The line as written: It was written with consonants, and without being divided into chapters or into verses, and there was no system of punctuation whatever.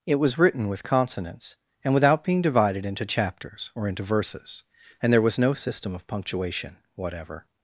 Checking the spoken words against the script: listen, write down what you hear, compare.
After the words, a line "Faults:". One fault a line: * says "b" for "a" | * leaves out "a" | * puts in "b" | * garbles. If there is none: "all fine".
It was written with consonants, and without being divided into chapters or into verses, and there was no system of punctuation whatever.
Faults:
all fine